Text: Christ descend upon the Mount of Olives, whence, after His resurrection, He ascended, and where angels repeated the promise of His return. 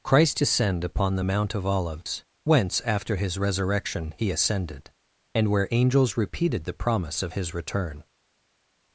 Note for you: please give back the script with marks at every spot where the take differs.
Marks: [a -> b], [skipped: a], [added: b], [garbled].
Christ descend upon the Mount of Olives, whence, after His resurrection, He ascended, and where angels repeated the promise of His return.